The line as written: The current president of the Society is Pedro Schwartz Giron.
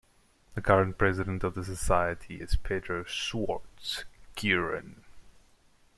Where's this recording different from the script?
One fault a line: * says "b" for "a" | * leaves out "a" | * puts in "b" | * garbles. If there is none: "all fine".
all fine